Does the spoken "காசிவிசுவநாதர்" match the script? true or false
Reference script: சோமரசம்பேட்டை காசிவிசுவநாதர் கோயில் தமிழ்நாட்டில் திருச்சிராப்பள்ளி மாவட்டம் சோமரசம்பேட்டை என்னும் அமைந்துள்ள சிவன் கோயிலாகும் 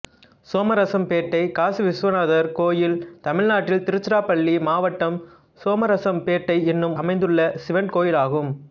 true